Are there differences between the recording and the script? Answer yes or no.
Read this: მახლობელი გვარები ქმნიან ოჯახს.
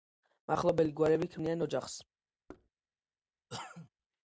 no